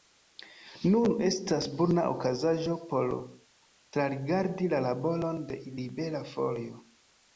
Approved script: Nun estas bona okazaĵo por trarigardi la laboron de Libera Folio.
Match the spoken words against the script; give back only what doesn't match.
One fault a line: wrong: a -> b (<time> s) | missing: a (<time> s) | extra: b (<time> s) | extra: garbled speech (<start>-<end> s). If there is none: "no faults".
no faults